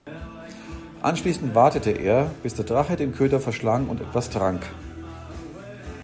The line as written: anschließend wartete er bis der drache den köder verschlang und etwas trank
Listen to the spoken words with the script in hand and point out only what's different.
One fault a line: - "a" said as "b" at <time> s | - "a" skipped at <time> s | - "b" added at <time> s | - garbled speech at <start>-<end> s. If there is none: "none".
none